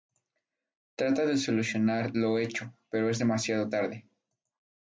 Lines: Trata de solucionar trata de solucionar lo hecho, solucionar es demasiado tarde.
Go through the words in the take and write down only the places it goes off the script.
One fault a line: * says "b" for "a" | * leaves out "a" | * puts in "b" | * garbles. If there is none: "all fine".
* leaves out "trata de solucionar"
* says "pero" for "solucionar"